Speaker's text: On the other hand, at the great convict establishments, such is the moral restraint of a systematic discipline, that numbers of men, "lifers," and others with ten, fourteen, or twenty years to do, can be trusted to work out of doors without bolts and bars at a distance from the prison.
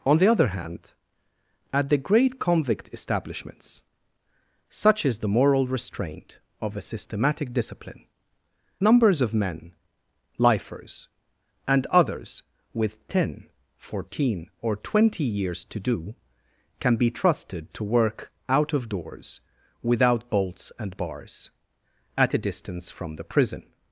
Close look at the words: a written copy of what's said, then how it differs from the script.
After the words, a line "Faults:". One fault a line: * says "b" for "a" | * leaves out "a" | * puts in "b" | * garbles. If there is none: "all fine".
On the other hand, at the great convict establishments, such is the moral restraint of a systematic discipline, numbers of men, "lifers," and others with ten, fourteen, or twenty years to do, can be trusted to work out of doors without bolts and bars at a distance from the prison.
Faults:
* leaves out "that"